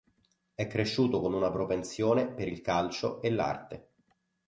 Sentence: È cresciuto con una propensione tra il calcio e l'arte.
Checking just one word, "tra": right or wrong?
wrong